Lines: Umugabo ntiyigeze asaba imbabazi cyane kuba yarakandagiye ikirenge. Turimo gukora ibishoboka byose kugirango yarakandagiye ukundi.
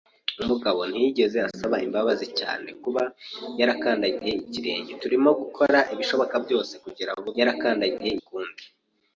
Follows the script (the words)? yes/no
yes